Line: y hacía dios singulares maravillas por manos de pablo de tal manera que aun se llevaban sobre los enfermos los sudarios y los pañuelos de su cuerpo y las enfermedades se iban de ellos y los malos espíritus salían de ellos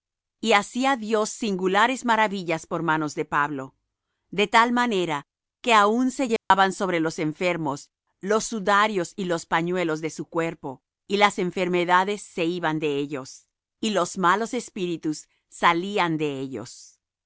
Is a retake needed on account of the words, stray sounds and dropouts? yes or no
yes